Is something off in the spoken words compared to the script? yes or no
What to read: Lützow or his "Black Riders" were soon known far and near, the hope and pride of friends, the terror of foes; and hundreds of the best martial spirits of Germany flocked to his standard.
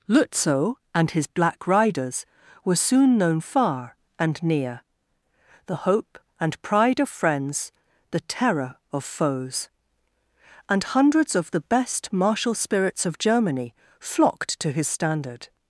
yes